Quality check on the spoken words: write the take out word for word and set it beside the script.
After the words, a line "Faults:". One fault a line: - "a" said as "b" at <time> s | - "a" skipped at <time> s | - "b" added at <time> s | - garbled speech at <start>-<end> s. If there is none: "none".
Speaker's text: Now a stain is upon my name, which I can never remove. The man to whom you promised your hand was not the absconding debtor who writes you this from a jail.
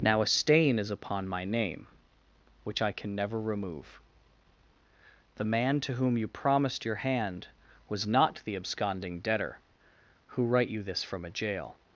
Now a stain is upon my name, which I can never remove. The man to whom you promised your hand was not the absconding debtor who write you this from a jail.
Faults:
- "writes" said as "write" at 10.5 s